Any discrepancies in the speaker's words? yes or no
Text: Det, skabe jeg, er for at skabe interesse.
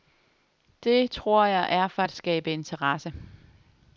yes